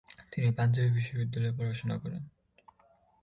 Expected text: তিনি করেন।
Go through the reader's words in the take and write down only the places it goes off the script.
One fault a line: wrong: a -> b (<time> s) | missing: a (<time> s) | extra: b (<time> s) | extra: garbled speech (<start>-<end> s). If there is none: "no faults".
extra: পাঞ্জাবী বিশ্ববিদ্যালয়ে পড়াশোনা (0.6 s)